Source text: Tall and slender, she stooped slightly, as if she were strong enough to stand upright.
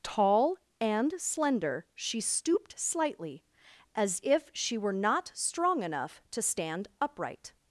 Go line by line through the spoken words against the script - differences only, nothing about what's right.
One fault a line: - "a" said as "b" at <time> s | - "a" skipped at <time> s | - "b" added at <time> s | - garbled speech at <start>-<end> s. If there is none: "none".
- "not" added at 4.9 s